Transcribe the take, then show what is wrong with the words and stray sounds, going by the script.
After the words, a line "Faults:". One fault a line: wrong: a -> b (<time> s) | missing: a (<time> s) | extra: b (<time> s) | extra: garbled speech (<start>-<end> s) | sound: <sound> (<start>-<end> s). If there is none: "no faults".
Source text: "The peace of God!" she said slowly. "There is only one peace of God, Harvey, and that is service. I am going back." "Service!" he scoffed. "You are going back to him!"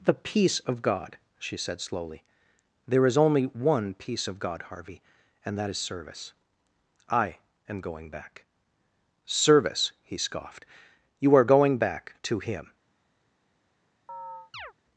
"The peace of God!" she said slowly. "There is only one peace of God, Harvey, and that is service. I am going back." "Service!" he scoffed. "You are going back to him!"
Faults:
sound: chirp (14.1-14.7 s)